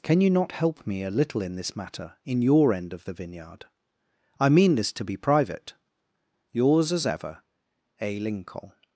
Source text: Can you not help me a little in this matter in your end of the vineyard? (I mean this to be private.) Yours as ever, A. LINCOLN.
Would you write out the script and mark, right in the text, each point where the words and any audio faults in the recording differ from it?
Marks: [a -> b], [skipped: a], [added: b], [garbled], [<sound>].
Can you not help me a little in this matter in your end of the vineyard? (I mean this to be private.) Yours as ever, A. LINCOLN.